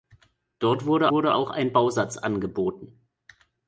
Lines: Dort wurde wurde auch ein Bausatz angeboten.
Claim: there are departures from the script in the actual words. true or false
false